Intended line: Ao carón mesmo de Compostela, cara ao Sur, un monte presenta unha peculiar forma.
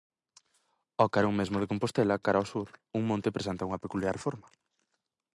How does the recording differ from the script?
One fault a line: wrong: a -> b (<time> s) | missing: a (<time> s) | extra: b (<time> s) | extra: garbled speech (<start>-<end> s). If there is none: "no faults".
no faults